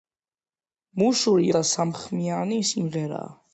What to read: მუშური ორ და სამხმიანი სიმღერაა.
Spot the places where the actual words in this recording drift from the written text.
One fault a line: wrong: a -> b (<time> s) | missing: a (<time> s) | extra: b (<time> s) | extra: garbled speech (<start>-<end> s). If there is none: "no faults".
missing: ორ (1.5 s)